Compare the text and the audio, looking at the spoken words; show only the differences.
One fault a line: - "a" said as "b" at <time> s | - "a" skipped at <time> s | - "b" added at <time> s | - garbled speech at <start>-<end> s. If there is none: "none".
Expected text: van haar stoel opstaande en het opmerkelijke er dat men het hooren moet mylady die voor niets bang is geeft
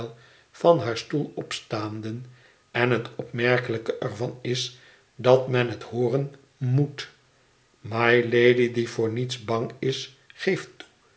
- "van is" added at 4.2 s